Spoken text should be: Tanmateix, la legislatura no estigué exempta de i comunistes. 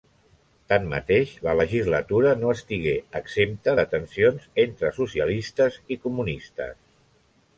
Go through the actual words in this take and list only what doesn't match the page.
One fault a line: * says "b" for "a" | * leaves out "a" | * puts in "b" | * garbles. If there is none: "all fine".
* puts in "tensions entre socialistes"